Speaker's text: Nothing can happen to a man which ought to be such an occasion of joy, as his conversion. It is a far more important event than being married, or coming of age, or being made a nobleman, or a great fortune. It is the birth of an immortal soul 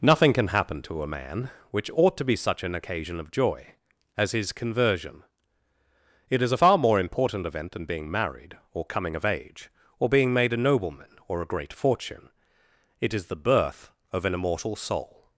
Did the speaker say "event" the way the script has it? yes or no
yes